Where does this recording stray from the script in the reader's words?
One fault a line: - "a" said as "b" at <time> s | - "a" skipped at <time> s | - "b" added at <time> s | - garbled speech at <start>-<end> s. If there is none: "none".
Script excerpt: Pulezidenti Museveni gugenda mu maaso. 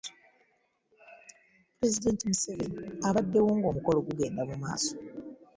- "abaddewo ng'omukolo" added at 3.1 s